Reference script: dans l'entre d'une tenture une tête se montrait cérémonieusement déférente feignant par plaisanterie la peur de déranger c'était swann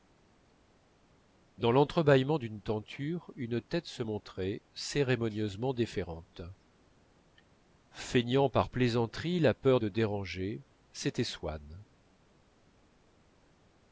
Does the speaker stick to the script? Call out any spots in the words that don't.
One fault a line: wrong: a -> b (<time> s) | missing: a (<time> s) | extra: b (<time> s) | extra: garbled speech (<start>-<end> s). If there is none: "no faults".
extra: bâillement (2.0 s)